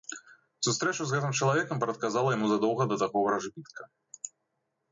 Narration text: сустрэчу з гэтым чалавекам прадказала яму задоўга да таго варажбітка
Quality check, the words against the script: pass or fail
pass